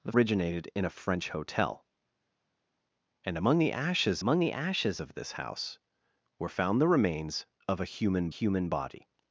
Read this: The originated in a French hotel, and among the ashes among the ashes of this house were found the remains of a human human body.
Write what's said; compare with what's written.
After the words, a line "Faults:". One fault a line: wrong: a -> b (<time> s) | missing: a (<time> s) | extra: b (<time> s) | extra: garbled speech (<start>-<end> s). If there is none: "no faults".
The originated in a French hotel, and among the ashes among the ashes of this house were found the remains of a human human body.
Faults:
no faults